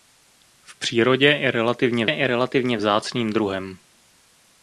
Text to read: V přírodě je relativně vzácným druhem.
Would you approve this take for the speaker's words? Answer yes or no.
no